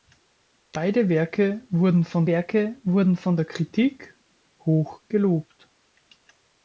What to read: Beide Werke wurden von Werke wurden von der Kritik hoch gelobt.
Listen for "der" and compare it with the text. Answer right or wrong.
right